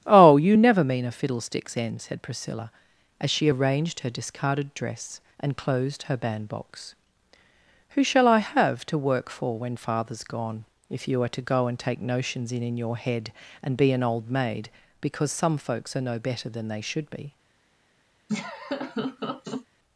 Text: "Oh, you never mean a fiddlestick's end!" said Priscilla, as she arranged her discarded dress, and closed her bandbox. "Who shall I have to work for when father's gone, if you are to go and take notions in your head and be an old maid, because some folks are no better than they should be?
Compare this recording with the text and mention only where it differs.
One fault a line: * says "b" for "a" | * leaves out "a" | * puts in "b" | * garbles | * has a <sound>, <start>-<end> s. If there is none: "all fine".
* puts in "in"
* has a laugh, 18.3-19.7 s